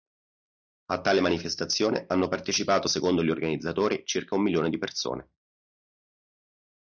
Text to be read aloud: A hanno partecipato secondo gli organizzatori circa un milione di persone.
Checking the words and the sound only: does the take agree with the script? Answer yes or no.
no